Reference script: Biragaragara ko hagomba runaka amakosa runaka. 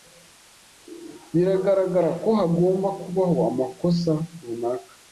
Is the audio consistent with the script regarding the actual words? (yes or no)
no